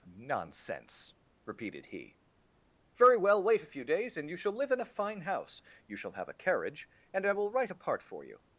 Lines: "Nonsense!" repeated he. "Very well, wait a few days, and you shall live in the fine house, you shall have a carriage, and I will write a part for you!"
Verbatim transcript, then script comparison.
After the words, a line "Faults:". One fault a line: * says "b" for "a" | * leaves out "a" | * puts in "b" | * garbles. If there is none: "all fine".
"Nonsense!" repeated he. "Very well, wait a few days, and you shall live in a fine house, you shall have a carriage, and I will write a part for you!"
Faults:
* says "a" for "the"